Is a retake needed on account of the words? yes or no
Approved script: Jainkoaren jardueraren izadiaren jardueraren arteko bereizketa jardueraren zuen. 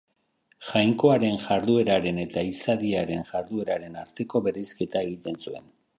yes